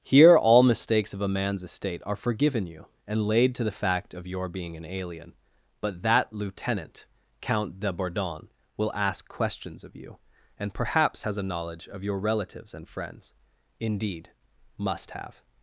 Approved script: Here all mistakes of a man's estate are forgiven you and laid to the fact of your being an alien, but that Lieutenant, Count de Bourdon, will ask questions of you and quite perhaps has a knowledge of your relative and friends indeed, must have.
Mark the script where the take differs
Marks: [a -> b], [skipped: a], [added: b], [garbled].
Here all mistakes of a man's estate are forgiven you and laid to the fact of your being an alien, but that Lieutenant, Count de Bourdon, will ask questions of you and [skipped: quite] perhaps has a knowledge of your [relative -> relatives] and friends indeed, must have.